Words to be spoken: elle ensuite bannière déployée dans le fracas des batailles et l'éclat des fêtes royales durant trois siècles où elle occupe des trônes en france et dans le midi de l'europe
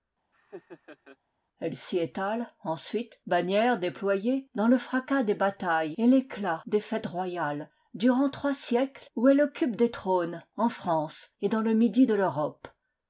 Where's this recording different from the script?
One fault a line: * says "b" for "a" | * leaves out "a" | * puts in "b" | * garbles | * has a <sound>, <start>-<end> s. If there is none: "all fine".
* has a laugh, 0.3-1.2 s
* puts in "s'y étale"